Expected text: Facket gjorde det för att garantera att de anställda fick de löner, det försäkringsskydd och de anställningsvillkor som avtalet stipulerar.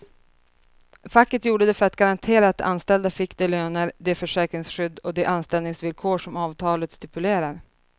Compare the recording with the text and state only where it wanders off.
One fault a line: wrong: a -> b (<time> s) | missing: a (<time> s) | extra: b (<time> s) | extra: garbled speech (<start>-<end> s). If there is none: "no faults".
no faults